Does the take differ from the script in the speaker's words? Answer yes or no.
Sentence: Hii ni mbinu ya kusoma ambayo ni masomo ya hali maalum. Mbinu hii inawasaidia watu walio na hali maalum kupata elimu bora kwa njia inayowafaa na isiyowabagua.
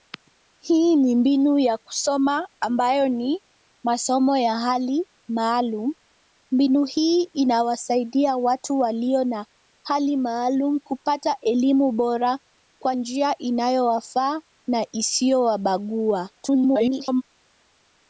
yes